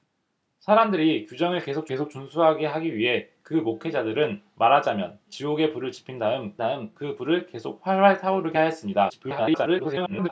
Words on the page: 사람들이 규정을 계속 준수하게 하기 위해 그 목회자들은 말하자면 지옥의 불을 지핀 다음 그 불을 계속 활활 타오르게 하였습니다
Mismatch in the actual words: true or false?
true